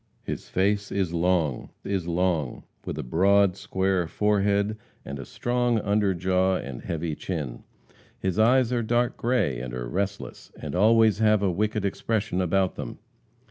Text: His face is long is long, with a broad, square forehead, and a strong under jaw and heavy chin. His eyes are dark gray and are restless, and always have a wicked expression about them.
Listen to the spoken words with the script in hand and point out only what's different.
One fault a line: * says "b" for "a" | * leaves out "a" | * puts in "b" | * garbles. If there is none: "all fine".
all fine